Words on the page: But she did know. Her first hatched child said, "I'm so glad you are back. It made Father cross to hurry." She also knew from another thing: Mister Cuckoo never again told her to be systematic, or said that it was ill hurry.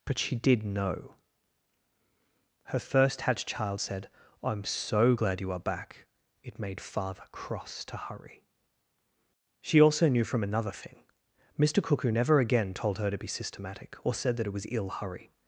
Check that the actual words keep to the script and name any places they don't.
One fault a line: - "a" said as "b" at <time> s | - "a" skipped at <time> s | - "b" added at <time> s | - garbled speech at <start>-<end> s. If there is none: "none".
none